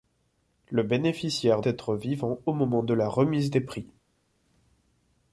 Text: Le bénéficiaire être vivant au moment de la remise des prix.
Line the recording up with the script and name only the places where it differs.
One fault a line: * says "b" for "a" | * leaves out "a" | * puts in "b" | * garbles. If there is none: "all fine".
all fine